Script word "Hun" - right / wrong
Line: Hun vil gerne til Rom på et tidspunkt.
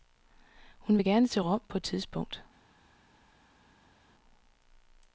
right